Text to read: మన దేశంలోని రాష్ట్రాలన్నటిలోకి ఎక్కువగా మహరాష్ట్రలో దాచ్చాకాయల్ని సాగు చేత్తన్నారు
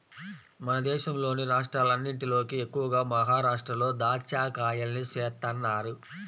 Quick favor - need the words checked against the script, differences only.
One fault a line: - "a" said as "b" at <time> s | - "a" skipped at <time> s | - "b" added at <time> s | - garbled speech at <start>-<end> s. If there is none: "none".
- "సాగు" skipped at 5.0 s